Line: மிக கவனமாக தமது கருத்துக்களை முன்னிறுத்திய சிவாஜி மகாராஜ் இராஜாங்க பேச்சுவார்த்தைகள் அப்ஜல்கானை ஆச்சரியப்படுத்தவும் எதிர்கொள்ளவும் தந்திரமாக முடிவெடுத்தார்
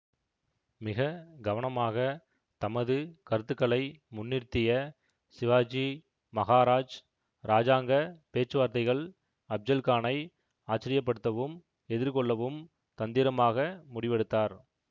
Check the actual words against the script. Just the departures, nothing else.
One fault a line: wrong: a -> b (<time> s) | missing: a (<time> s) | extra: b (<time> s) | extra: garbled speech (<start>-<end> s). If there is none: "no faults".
no faults